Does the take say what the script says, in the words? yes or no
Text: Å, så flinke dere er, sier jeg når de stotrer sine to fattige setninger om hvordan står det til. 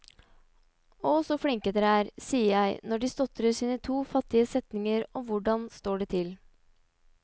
yes